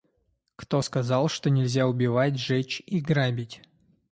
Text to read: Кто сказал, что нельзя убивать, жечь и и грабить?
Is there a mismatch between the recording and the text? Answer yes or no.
yes